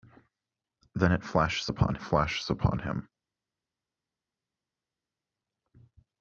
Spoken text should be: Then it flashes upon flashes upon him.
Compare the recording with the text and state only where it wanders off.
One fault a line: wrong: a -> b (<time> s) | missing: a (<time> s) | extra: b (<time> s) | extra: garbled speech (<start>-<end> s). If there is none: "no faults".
no faults